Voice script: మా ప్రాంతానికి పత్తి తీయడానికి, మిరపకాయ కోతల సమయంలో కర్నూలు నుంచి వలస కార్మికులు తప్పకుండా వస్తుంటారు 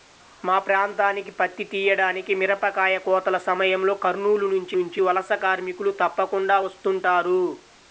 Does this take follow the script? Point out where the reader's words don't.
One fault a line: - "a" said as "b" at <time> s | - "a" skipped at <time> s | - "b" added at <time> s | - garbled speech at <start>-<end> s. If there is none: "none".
- "నుంచి" added at 4.7 s